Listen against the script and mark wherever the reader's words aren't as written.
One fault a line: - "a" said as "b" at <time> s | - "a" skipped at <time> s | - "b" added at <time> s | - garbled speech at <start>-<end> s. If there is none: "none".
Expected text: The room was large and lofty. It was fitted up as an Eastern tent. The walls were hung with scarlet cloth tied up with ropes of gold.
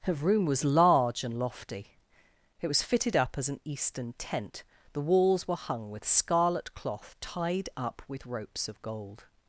- "The" said as "Her" at 0.0 s